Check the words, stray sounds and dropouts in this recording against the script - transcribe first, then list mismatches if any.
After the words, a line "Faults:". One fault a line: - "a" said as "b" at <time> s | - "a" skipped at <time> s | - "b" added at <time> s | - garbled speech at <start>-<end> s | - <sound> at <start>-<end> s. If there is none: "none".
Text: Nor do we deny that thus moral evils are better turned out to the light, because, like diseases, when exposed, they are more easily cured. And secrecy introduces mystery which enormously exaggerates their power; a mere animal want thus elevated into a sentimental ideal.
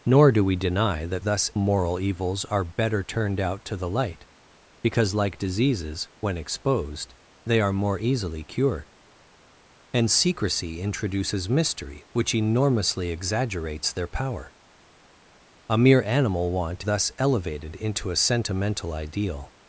Nor do we deny that thus moral evils are better turned out to the light, because, like diseases, when exposed, they are more easily cured. And secrecy introduces mystery which enormously exaggerates their power; a mere animal want thus elevated into a sentimental ideal.
Faults:
none